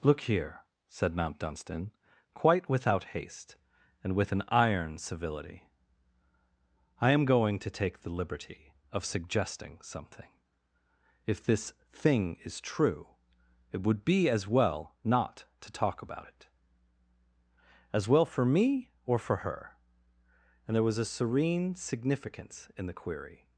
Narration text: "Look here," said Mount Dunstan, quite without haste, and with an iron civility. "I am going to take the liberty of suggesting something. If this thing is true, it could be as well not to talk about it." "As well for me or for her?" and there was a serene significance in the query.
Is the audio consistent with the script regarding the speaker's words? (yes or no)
no